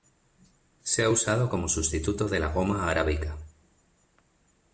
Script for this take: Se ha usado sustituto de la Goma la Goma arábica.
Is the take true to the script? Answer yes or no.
no